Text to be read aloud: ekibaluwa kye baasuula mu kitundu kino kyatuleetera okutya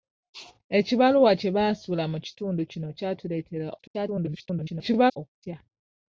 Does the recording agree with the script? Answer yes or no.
no